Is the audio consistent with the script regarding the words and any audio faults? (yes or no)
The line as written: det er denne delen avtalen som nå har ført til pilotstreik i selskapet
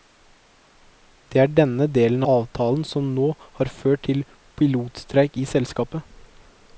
yes